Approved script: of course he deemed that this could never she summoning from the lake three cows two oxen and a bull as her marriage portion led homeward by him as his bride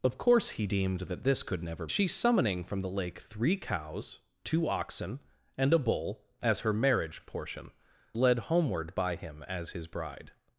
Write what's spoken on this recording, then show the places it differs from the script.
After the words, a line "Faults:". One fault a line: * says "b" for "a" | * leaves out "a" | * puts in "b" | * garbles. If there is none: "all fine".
of course he deemed that this could never she summoning from the lake three cows two oxen and a bull as her marriage portion led homeward by him as his bride
Faults:
all fine